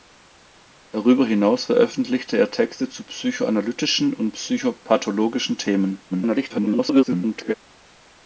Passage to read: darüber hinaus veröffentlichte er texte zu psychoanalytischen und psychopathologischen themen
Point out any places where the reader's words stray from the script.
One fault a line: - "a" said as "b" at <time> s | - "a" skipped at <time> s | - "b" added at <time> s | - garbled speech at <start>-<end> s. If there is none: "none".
- garbled speech at 6.1-7.5 s